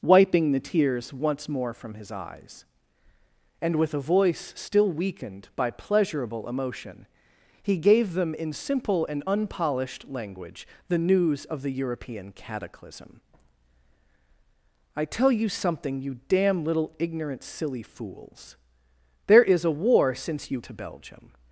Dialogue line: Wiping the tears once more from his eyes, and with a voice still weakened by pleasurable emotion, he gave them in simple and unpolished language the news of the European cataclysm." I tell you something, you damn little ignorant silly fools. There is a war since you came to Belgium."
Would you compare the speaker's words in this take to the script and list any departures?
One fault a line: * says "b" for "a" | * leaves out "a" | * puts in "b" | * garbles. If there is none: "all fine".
* leaves out "came"